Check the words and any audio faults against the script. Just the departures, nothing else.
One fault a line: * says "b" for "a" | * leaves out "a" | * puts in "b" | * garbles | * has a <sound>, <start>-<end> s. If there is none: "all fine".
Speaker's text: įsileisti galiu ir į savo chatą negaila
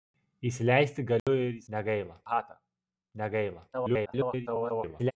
* has a dropout, 1.2-1.3 s
* says "negaila" for "savo"
* garbles